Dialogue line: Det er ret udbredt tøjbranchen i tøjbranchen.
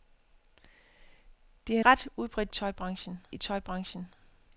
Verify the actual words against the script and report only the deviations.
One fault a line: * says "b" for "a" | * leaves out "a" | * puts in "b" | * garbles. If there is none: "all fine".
all fine